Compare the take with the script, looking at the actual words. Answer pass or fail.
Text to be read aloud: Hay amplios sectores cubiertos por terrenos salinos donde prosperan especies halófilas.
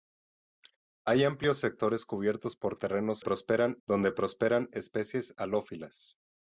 fail